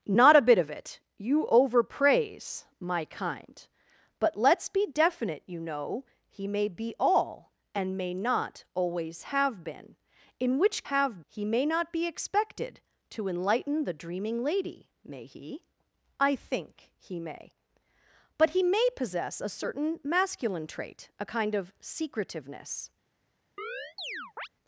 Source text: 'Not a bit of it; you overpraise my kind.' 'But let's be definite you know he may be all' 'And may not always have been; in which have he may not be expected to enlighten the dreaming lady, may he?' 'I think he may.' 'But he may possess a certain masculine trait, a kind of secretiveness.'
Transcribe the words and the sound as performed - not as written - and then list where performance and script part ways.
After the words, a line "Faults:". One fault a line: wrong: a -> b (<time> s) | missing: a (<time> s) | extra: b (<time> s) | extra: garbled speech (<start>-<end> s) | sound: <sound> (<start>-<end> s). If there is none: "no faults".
'Not a bit of it; you overpraise my kind.' 'But let's be definite you know he may be all' 'And may not always have been; in which have he may not be expected to enlighten the dreaming lady, may he?' 'I think he may.' 'But he may possess a certain masculine trait, a kind of secretiveness.'
Faults:
sound: chirp (23.6-24.5 s)